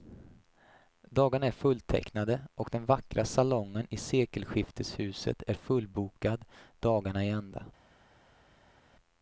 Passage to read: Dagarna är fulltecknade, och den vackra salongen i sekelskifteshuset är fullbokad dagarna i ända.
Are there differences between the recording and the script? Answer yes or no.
no